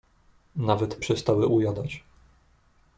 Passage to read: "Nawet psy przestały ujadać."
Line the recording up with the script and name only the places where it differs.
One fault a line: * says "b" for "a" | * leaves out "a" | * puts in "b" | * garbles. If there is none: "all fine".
* leaves out "psy"